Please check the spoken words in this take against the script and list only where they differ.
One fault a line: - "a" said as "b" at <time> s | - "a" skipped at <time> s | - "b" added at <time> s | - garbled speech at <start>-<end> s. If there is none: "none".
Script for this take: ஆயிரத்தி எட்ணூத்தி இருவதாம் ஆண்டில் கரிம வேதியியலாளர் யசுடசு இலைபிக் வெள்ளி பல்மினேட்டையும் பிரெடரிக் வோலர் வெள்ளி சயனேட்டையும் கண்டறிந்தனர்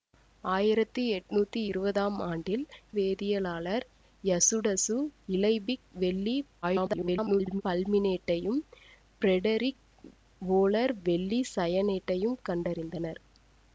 - "கரிம" skipped at 2.6 s
- garbled speech at 6.6-7.6 s